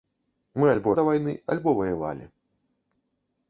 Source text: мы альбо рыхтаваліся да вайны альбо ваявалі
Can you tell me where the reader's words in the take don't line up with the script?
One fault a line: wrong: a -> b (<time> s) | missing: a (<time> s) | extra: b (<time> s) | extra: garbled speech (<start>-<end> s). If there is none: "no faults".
missing: рыхтаваліся (0.9 s)